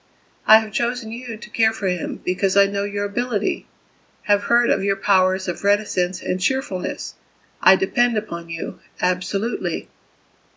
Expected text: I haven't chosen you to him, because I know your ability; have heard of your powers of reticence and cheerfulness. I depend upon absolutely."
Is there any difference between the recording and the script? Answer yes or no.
yes